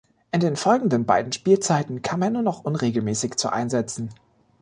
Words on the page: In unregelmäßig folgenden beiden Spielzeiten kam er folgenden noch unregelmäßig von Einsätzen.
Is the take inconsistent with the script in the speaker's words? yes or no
yes